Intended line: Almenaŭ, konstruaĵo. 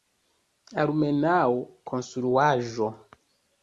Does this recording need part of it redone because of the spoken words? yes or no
no